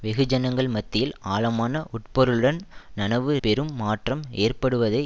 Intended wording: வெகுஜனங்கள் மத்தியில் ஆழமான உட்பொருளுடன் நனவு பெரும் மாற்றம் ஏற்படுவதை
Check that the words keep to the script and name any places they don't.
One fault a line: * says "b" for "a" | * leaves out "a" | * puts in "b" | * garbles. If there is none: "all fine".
all fine